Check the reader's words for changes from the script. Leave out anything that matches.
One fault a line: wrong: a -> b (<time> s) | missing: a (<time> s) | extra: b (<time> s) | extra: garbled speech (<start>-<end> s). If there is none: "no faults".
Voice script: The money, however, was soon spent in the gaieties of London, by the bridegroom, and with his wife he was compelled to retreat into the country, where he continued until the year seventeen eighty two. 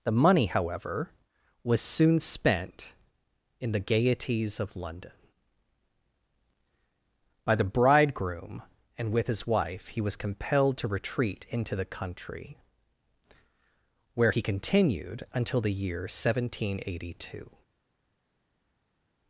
no faults